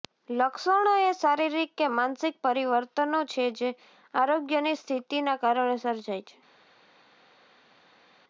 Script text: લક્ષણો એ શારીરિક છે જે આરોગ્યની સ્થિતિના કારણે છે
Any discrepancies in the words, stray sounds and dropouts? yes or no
yes